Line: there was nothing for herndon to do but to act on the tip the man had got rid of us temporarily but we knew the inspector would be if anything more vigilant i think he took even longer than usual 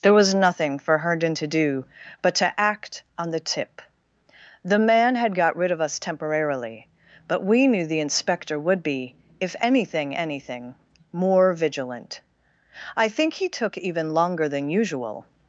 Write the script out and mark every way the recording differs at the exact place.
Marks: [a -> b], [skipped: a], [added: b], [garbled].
there was nothing for herndon to do but to act on the tip the man had got rid of us temporarily but we knew the inspector would be if anything [added: anything] more vigilant i think he took even longer than usual